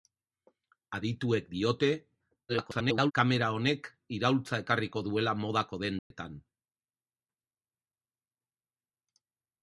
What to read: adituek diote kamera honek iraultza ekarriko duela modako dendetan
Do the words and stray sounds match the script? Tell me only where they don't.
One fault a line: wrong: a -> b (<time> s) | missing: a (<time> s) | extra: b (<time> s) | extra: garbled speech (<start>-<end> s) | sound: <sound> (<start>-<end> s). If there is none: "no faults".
extra: garbled speech (2.5-3.1 s)
sound: dropout (6.0-6.1 s)